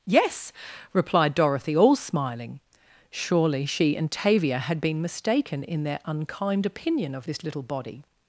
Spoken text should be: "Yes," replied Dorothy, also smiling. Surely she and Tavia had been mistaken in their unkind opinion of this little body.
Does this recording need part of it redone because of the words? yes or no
yes